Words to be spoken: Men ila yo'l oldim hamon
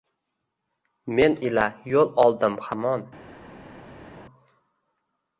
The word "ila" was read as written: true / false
true